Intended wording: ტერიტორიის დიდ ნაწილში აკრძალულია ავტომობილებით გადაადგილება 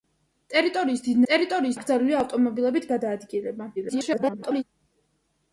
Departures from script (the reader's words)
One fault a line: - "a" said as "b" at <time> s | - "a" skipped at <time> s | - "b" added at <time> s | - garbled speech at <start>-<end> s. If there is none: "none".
- "ნაწილში" said as "ტერიტორიის" at 1.3 s
- garbled speech at 3.8-4.6 s